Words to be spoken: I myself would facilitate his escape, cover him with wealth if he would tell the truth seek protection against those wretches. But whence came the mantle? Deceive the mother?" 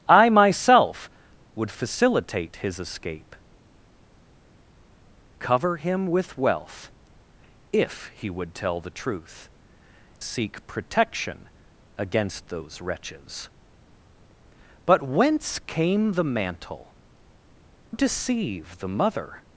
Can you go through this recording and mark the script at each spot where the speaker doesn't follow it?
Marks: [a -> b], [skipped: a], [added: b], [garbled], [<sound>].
I myself would facilitate his escape, cover him with wealth if he would tell the truth seek protection against those wretches. But whence came the mantle? Deceive the mother?"